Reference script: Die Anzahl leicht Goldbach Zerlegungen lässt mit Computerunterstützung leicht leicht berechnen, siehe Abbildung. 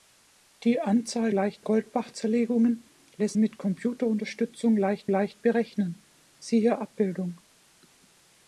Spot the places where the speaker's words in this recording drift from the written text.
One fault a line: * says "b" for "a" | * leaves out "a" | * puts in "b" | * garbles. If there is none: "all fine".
all fine